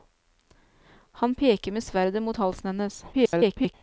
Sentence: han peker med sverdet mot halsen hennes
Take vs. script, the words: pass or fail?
fail